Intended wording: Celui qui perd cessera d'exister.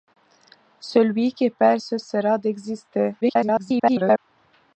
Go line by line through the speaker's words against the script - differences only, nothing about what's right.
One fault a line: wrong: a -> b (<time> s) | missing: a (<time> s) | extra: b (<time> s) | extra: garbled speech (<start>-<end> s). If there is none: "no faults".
extra: garbled speech (3.2-4.2 s)